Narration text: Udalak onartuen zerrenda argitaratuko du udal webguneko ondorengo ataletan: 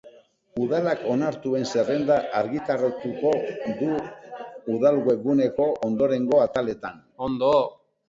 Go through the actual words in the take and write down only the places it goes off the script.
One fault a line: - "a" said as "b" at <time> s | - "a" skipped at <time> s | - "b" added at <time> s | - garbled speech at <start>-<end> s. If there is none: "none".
none